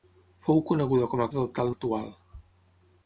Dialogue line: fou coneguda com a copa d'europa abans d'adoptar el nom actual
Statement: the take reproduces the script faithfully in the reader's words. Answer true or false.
false